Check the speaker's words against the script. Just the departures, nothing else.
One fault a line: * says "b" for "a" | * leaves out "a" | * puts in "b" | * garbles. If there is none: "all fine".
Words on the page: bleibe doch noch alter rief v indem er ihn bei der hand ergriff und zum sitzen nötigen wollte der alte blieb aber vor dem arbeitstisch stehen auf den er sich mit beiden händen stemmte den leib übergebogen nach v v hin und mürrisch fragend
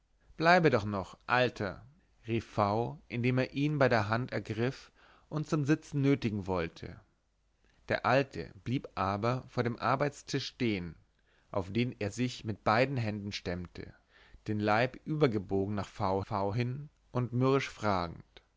all fine